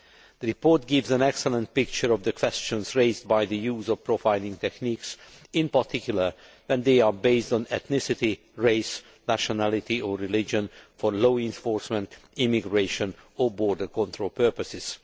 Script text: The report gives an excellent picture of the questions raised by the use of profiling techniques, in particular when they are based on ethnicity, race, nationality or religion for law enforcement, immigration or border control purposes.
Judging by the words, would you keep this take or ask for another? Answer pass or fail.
pass